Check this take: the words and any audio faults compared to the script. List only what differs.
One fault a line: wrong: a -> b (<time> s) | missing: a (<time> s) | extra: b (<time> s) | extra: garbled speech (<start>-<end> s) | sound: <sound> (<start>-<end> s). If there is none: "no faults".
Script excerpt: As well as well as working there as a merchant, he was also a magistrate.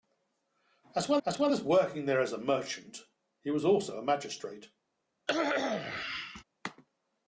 sound: cough (5.3-6.4 s)